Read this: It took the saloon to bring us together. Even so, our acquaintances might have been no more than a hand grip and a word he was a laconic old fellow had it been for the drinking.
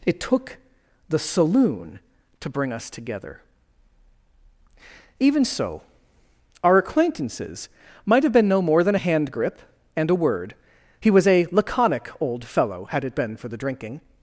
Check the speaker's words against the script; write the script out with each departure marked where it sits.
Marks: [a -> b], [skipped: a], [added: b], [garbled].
It took the saloon to bring us together. Even so, our acquaintances might have been no more than a hand grip and a word he was a laconic old fellow had it been for the drinking.